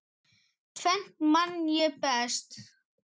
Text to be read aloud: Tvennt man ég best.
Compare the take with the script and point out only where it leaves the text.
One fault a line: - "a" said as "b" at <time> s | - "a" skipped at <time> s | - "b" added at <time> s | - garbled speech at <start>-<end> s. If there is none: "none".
none